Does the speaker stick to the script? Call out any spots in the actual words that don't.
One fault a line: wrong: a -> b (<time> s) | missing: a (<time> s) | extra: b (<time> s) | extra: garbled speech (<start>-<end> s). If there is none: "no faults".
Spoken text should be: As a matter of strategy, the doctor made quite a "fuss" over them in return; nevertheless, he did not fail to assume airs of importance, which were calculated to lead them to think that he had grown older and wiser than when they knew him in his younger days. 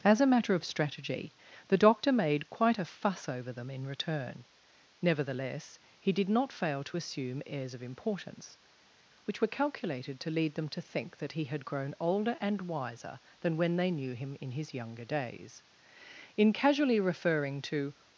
extra: In casually referring to (16.4 s)